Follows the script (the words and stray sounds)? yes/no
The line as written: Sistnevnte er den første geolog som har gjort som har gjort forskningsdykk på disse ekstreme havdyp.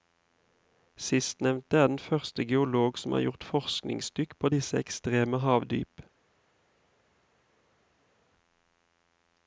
no